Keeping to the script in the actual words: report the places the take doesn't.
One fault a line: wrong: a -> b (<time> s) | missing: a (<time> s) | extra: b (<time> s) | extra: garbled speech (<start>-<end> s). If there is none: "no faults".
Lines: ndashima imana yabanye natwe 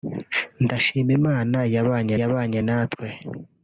extra: yabanye (2.2 s)